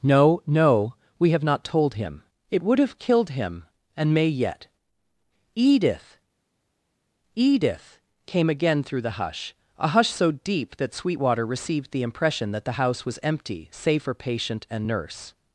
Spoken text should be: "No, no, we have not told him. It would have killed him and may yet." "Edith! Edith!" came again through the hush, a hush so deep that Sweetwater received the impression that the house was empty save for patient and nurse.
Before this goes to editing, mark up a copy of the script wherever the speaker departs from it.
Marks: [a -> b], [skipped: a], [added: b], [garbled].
"No, no, we have not told him. It would have killed him and may yet." "Edith! Edith!" came again through the hush, a hush so deep that Sweetwater received the impression that the house was empty save for patient and nurse.